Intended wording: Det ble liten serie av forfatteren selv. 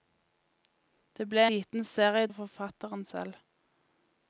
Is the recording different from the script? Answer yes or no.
no